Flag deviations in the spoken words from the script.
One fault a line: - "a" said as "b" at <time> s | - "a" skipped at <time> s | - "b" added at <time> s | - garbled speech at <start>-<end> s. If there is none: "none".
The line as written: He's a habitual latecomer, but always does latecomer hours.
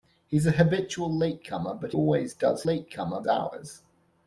none